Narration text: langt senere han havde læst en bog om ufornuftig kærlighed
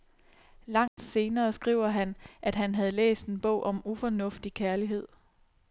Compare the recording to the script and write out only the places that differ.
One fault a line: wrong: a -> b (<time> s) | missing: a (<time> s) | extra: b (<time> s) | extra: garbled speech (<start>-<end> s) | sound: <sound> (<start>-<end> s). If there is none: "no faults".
sound: dropout (0.9-1.0 s)
extra: skriver han at (1.5 s)